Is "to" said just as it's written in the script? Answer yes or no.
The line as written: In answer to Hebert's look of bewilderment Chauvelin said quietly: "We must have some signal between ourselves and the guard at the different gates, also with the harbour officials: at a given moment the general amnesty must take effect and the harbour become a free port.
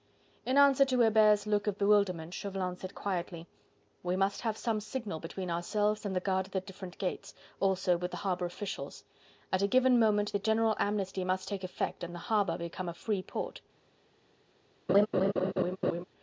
yes